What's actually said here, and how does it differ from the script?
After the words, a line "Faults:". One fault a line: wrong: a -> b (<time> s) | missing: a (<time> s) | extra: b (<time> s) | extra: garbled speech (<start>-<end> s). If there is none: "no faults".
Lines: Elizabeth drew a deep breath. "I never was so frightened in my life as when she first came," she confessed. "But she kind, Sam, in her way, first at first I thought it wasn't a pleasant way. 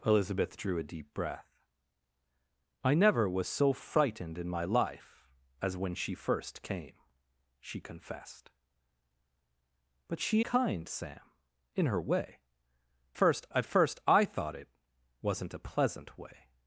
Elizabeth drew a deep breath. "I never was so frightened in my life as when she first came," she confessed. "But she kind, Sam, in her way, first at first I thought it wasn't a pleasant way.
Faults:
no faults